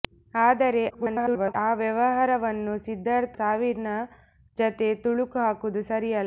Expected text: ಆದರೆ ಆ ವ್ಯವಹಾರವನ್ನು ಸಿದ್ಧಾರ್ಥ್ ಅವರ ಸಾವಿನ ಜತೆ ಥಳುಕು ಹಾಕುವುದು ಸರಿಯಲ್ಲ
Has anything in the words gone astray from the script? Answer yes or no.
yes